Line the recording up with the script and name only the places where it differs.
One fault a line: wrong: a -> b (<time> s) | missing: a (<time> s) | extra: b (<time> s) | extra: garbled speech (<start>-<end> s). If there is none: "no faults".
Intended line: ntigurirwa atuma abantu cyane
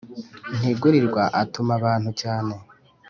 no faults